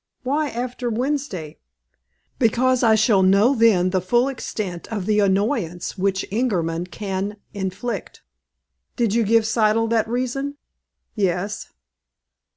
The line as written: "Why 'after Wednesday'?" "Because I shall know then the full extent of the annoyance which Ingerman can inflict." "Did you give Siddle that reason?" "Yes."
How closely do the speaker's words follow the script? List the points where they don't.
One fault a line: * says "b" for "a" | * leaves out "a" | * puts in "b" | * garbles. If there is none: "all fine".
all fine